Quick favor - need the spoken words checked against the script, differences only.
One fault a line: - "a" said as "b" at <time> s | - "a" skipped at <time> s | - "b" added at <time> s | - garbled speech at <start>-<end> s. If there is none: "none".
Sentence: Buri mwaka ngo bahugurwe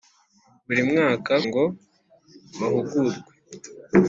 none